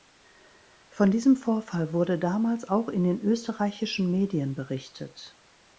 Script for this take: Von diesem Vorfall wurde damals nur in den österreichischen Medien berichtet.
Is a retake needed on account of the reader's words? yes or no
yes